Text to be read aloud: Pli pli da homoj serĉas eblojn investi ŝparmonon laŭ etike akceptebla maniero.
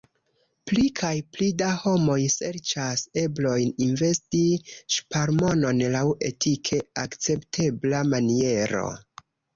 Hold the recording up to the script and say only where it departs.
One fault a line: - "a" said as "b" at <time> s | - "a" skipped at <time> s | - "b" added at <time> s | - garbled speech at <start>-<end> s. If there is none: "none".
- "kaj" added at 1.0 s